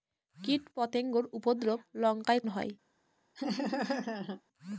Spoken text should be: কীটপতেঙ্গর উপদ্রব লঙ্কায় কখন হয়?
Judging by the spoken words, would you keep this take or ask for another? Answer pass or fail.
fail